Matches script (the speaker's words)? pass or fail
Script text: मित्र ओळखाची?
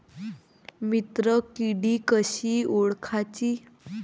fail